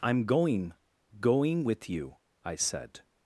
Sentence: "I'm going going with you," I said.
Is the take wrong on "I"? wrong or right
right